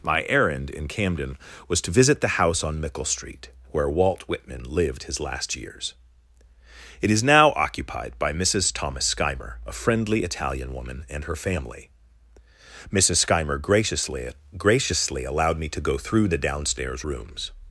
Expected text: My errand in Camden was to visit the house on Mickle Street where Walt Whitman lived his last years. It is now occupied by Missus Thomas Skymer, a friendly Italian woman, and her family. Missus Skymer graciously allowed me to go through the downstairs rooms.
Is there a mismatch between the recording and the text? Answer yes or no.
yes